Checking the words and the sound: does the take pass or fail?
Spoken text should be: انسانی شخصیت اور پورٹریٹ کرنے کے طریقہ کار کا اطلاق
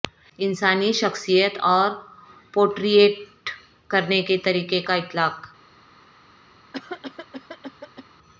fail